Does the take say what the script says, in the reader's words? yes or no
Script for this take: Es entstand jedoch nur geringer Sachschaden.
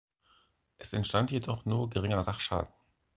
yes